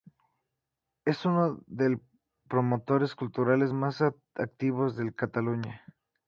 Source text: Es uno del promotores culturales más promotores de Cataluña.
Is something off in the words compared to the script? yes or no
yes